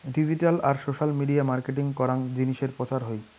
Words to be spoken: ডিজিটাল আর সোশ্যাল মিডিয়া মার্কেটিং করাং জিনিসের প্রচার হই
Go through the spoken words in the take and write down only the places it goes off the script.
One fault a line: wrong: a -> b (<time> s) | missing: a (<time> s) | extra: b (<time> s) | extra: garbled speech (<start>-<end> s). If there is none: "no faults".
no faults